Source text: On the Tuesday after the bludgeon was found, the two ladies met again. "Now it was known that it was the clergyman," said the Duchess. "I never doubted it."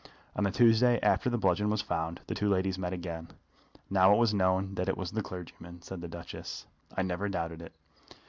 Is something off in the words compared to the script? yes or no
no